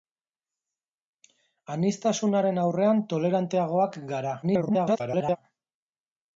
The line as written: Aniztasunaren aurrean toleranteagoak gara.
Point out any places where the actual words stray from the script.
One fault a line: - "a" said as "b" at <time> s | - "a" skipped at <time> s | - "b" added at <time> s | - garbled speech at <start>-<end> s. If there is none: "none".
- garbled speech at 4.4-5.4 s